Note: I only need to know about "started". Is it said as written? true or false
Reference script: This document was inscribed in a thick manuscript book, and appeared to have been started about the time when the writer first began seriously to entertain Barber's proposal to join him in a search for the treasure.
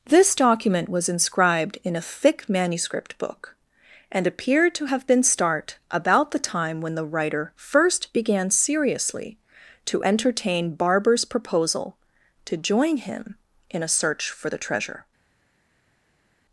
false